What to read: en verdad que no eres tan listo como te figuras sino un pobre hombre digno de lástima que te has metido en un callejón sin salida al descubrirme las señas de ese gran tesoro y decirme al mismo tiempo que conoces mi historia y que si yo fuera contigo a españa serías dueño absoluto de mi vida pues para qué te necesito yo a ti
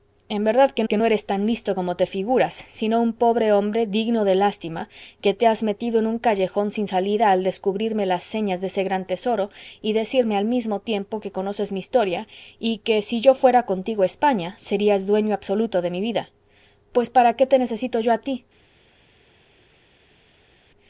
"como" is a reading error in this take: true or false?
false